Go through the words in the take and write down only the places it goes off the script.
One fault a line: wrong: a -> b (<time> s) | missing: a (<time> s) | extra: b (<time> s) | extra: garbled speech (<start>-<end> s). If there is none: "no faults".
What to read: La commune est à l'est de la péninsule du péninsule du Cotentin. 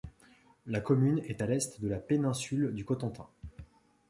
missing: péninsule du (2.8 s)